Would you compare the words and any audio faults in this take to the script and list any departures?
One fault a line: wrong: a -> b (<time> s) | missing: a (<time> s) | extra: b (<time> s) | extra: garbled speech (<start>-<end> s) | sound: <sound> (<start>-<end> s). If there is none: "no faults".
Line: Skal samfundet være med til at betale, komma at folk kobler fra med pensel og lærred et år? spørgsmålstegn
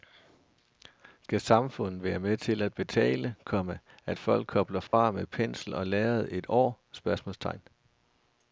sound: dropout (4.9-4.9 s)